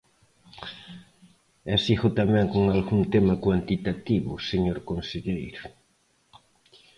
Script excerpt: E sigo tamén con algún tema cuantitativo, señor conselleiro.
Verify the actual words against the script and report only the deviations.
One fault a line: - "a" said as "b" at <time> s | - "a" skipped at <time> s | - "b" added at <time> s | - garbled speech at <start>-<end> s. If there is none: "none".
none